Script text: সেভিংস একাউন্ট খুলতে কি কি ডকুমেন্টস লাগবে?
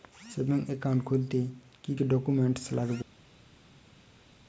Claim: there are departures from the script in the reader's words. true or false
false